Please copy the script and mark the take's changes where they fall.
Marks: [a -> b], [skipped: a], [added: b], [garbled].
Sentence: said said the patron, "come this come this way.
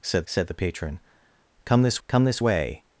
said said the patron, "come this come this way.